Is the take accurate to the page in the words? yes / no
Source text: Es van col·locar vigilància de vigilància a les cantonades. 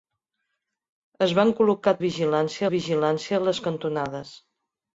yes